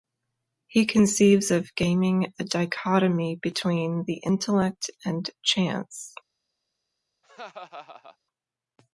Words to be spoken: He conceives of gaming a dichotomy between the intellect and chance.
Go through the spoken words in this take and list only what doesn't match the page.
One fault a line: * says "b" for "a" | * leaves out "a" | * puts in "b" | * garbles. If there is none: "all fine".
all fine